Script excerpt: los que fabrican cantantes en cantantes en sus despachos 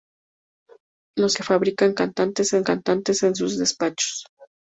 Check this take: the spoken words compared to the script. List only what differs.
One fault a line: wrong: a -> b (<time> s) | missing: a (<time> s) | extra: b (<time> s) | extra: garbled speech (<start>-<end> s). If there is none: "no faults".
no faults